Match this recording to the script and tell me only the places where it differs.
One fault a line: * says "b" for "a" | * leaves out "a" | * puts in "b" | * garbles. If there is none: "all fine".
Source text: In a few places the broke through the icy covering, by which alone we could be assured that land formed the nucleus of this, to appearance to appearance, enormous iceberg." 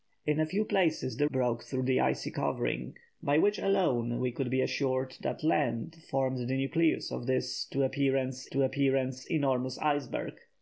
all fine